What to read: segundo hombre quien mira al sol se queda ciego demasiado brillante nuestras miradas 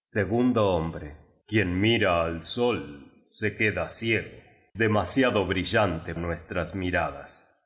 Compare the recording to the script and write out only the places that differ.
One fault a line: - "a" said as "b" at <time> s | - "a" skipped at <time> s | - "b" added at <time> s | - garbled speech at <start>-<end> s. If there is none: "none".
none